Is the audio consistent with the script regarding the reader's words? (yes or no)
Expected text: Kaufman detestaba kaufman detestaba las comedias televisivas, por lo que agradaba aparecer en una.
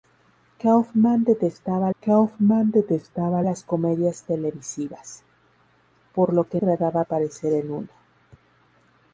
yes